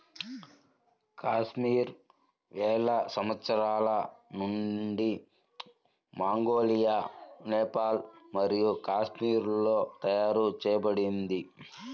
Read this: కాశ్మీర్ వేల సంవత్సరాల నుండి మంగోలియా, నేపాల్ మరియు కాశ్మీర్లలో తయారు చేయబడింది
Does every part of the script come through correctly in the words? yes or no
yes